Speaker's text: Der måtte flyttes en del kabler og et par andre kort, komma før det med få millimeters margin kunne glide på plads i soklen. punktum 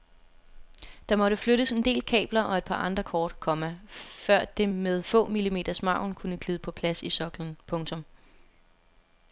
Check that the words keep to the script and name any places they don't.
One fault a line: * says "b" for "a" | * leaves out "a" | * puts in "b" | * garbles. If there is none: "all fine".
all fine